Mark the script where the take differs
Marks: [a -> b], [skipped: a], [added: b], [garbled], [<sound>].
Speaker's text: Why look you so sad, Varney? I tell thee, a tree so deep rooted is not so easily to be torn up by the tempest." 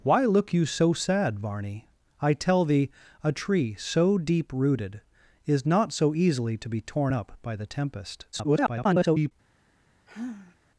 Why look you so sad, Varney? I tell thee, a tree so deep rooted is not so easily to be torn up by the tempest." [garbled] [sigh]